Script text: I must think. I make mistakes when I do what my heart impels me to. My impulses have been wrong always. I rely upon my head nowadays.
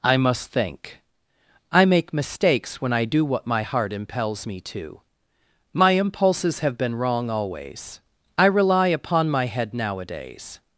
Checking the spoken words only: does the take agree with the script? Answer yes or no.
yes